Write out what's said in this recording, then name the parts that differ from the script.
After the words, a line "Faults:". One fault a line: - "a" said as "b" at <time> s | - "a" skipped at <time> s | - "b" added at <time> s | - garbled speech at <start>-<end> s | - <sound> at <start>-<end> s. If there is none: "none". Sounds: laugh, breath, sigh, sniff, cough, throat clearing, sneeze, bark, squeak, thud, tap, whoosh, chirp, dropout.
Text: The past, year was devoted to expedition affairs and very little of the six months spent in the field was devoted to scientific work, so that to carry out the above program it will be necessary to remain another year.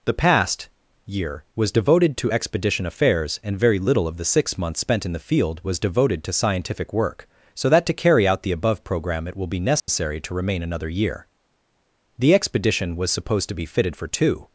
The past, year was devoted to expedition affairs and very little of the six months spent in the field was devoted to scientific work, so that to carry out the above program it will be necessary to remain another year. The expedition was supposed to be fitted for two
Faults:
- dropout at 9.8-9.9 s
- "The expedition was supposed to be fitted for two" added at 12.2 s